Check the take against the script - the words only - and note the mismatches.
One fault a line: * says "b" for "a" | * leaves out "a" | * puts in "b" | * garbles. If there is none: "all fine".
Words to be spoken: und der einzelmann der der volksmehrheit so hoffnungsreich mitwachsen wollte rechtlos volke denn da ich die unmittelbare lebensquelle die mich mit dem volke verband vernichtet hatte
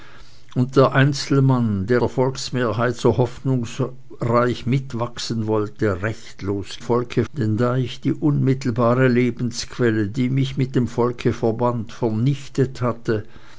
all fine